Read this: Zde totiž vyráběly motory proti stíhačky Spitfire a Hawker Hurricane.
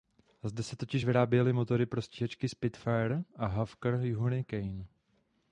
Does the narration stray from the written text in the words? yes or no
yes